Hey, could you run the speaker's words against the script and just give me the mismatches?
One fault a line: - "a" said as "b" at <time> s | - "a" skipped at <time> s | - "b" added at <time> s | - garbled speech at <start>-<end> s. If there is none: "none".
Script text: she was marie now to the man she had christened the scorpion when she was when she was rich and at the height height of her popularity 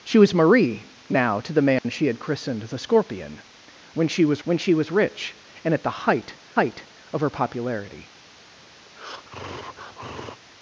none